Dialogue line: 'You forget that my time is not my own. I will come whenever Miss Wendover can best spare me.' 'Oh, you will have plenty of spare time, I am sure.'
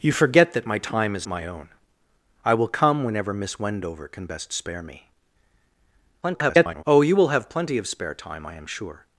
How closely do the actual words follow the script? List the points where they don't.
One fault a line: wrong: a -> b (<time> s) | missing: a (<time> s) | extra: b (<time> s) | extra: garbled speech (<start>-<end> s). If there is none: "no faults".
missing: not (1.3 s)
extra: garbled speech (6.2-6.8 s)